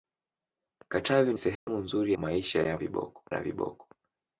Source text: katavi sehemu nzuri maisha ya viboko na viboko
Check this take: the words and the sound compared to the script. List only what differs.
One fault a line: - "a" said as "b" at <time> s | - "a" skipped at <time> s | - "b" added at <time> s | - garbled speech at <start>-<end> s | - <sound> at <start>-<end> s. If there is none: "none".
- dropout at 1.5-1.7 s